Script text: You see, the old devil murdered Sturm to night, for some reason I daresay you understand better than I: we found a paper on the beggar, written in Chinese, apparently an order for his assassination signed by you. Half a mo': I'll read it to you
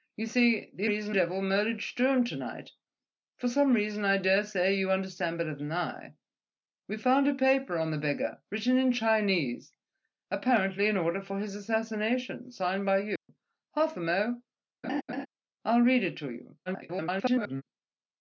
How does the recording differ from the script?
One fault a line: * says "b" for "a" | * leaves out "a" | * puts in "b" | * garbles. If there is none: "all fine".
* says "reason" for "old"
* garbles